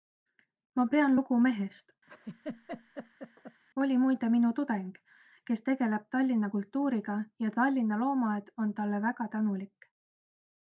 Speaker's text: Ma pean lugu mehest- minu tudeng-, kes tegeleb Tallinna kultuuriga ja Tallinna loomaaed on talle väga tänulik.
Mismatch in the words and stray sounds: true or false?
true